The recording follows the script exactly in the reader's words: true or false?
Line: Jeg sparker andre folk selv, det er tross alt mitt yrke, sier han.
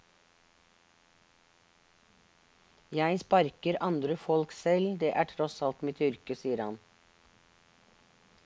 true